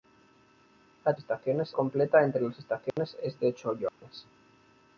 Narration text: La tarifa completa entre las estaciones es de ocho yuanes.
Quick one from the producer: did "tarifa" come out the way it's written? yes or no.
no